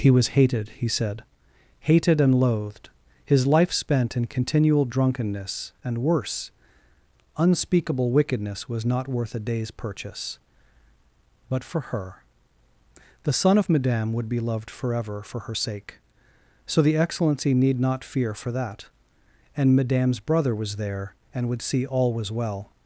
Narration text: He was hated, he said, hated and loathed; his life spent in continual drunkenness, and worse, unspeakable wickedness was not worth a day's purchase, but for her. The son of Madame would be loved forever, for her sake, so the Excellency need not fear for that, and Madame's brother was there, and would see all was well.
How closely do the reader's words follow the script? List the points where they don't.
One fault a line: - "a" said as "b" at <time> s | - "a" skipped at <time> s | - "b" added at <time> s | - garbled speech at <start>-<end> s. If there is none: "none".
none